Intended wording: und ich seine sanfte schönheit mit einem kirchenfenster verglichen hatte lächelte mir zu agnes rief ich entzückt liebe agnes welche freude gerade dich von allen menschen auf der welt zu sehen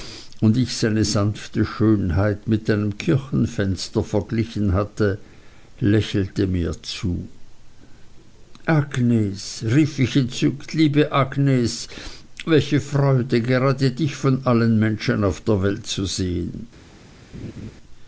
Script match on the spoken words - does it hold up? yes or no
yes